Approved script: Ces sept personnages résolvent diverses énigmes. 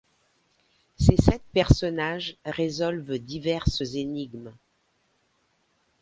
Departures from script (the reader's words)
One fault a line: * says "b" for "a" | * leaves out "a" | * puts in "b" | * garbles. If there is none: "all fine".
all fine